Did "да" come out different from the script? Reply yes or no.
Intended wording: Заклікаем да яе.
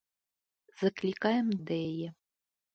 no